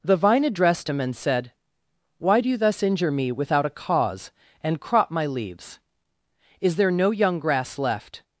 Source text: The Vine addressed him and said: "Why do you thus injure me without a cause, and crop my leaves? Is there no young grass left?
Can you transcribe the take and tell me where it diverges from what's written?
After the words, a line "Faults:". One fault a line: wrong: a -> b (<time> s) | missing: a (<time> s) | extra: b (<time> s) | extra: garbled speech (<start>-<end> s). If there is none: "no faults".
The Vine addressed him and said: "Why do you thus injure me without a cause, and crop my leaves? Is there no young grass left?
Faults:
no faults